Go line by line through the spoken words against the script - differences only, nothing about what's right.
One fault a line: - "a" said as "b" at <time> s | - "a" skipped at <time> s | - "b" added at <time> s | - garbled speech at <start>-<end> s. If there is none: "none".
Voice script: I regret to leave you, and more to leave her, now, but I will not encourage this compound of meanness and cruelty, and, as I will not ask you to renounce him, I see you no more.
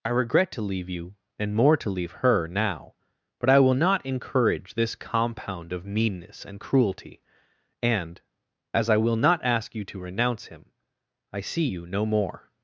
none